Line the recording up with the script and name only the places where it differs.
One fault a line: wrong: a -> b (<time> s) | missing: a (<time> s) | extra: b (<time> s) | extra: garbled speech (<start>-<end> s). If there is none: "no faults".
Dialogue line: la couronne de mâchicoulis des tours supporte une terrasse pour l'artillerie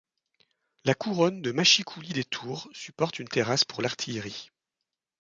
no faults